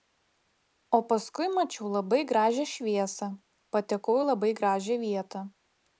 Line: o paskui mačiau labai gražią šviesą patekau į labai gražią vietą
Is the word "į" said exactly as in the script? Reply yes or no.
yes